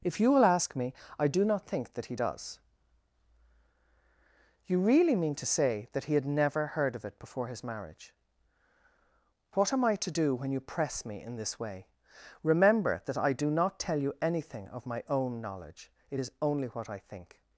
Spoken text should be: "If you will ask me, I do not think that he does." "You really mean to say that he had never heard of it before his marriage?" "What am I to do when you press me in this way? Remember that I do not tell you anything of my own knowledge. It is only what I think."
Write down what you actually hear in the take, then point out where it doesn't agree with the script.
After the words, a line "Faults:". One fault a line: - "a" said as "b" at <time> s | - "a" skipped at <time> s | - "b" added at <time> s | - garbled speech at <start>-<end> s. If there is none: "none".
"If you will ask me, I do not think that he does." "You really mean to say that he had never heard of it before his marriage?" "What am I to do when you press me in this way? Remember that I do not tell you anything of my own knowledge. It is only what I think."
Faults:
none